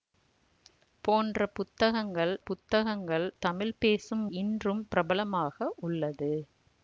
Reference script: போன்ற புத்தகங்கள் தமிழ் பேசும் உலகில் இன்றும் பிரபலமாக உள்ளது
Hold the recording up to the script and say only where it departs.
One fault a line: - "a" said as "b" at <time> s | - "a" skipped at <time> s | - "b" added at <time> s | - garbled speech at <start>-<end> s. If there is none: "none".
- "புத்தகங்கள்" added at 2.4 s
- "உலகில்" skipped at 4.2 s